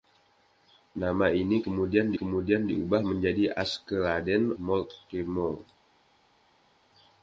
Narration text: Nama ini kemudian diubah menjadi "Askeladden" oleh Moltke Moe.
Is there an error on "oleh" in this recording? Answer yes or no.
yes